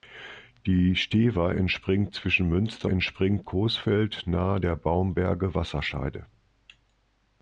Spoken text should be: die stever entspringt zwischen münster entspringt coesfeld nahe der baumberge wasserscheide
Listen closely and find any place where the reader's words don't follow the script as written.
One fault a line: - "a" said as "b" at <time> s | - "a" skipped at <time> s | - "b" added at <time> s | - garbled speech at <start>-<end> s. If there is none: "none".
none